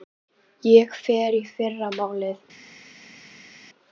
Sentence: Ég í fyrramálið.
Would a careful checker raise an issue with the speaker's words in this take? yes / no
yes